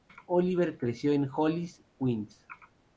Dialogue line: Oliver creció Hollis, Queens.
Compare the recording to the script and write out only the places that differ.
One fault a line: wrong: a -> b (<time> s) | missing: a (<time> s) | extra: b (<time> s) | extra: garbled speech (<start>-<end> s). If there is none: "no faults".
extra: en (1.1 s)